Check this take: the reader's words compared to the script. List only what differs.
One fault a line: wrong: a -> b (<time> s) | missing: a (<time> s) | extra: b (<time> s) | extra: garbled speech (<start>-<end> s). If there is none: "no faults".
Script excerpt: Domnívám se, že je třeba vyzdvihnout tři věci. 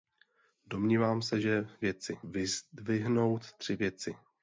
wrong: třeba -> věci (1.8 s)